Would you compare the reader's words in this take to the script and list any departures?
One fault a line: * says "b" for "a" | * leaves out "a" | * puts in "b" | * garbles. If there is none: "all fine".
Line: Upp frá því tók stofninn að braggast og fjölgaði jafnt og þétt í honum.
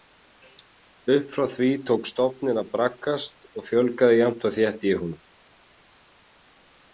all fine